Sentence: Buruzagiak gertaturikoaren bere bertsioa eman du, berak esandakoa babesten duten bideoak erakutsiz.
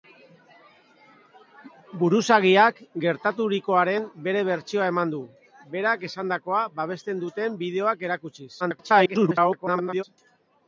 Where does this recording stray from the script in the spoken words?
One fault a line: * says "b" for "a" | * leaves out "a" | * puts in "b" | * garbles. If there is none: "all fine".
* garbles